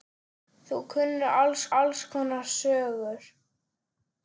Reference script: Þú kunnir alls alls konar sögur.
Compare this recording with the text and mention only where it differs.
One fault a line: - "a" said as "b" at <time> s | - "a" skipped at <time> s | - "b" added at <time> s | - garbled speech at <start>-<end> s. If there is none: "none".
none